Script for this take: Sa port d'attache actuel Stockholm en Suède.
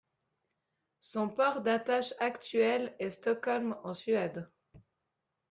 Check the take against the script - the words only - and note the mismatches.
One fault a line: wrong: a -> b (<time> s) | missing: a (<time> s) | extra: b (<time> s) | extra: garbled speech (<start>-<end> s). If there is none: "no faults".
wrong: Sa -> Son (1.0 s)
extra: est (3.0 s)